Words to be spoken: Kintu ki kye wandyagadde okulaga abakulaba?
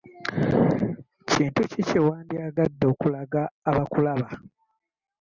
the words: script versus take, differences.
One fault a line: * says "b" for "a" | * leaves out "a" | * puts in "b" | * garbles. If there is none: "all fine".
all fine